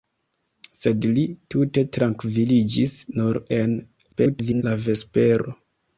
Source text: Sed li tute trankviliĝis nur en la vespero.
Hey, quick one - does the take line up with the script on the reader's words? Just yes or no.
no